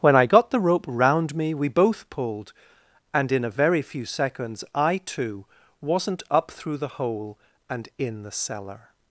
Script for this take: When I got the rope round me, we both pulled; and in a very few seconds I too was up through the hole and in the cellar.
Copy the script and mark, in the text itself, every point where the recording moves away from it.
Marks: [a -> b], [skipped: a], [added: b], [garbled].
When I got the rope round me, we both pulled; and in a very few seconds I too [was -> wasn't] up through the hole and in the cellar.